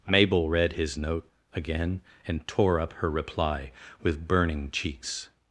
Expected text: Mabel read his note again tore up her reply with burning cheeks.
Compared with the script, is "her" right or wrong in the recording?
right